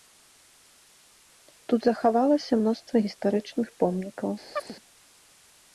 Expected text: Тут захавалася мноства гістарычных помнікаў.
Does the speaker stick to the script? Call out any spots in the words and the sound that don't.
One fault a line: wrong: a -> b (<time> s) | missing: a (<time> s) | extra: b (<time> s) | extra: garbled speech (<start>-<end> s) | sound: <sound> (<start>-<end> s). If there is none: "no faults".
sound: chirp (4.6-4.8 s)